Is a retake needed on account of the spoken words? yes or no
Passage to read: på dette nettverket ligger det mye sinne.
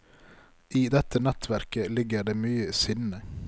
yes